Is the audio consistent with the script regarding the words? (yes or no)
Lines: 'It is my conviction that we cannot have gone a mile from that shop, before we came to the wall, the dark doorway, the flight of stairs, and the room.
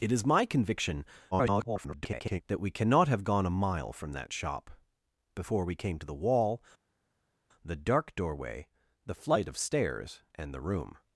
no